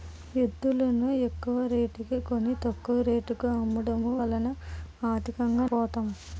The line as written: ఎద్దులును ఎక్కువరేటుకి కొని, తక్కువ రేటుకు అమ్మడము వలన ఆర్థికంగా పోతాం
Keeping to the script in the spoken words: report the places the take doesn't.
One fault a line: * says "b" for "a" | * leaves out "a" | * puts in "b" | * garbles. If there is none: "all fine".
all fine